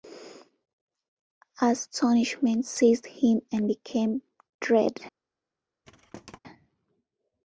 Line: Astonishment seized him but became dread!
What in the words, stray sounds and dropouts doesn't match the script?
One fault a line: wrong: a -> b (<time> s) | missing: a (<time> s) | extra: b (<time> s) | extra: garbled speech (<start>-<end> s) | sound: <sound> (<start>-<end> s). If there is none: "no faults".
wrong: but -> and (3.5 s)
sound: thud (5.8-6.4 s)